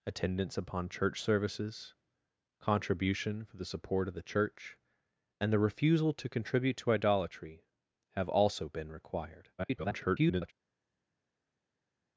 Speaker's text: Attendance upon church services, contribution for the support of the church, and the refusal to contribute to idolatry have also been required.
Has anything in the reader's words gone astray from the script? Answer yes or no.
yes